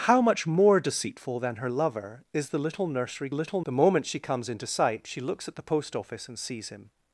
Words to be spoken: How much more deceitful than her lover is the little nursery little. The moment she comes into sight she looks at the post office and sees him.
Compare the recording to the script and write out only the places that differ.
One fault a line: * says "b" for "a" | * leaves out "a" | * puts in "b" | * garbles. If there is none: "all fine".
all fine